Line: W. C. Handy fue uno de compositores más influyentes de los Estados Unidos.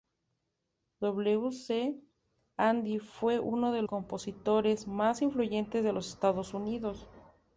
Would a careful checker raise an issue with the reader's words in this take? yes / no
no